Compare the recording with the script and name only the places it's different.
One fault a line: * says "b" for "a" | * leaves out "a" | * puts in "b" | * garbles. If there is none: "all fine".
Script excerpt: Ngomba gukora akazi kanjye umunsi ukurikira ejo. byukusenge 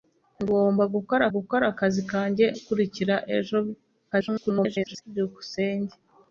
* puts in "gukora"
* leaves out "umunsi"
* garbles